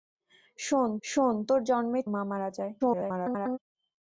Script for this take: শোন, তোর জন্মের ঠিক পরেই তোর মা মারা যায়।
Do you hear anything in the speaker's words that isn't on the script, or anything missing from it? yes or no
yes